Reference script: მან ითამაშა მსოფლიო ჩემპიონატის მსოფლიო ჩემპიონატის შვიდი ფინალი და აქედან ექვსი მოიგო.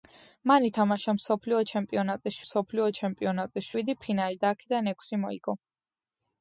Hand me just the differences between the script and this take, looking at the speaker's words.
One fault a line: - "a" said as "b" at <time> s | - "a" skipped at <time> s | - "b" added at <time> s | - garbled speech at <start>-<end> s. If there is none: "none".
none